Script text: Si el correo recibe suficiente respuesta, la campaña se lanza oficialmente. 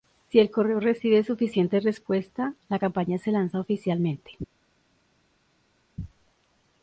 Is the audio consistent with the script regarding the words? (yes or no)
yes